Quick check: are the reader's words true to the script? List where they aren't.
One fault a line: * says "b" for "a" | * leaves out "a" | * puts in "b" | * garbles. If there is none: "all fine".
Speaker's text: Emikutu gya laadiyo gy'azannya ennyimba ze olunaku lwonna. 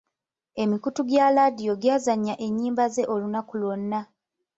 all fine